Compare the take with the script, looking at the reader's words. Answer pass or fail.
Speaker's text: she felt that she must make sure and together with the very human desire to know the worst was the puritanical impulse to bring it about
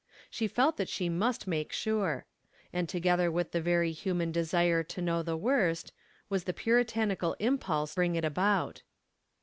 fail